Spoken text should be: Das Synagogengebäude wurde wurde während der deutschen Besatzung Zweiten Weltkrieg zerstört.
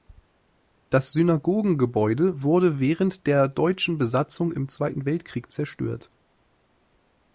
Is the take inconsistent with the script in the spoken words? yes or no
yes